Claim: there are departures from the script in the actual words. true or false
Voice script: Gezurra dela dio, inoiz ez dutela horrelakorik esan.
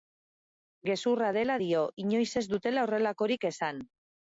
false